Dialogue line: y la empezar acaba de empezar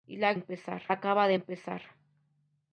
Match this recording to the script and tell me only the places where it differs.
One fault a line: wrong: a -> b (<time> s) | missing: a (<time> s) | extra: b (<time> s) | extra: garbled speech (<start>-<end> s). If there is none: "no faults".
no faults